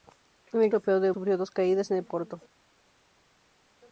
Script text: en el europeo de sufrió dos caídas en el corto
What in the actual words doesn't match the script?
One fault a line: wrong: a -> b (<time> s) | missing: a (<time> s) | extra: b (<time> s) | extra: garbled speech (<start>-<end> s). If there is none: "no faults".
no faults